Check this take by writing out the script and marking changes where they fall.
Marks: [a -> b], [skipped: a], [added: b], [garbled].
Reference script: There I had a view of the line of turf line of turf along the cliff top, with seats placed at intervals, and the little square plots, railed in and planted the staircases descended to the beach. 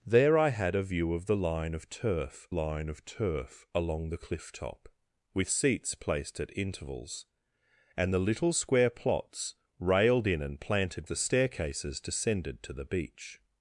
There I had a view of the line of turf line of turf along the cliff top, with seats placed at intervals, and the little square plots, railed in and planted the staircases descended to the beach.